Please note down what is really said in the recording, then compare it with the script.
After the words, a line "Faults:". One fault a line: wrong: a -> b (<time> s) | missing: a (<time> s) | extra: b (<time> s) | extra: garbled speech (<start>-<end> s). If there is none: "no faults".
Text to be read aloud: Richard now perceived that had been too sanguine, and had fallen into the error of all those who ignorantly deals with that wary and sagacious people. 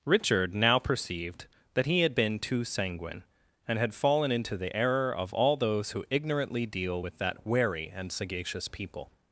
Richard now perceived that he had been too sanguine, and had fallen into the error of all those who ignorantly deal with that wary and sagacious people.
Faults:
extra: he (1.9 s)
wrong: deals -> deal (6.7 s)